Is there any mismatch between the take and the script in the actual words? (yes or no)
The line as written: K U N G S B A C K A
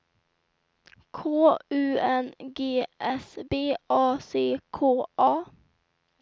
no